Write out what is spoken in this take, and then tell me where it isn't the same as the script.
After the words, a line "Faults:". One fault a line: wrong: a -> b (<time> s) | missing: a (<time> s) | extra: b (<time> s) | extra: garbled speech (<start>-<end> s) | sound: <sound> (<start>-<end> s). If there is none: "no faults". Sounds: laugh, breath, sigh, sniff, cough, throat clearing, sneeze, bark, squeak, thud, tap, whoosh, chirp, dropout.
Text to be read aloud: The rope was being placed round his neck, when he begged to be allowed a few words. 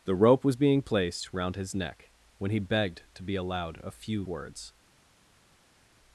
The rope was being placed round his neck, when he begged to be allowed a few words.
Faults:
no faults